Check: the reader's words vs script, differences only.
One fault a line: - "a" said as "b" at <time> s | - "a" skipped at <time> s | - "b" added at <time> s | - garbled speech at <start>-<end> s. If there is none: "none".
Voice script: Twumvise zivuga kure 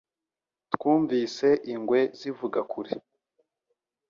- "ingwe" added at 1.7 s